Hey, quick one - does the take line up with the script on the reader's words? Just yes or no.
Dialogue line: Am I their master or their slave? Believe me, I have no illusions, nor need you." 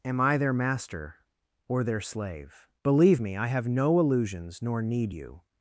yes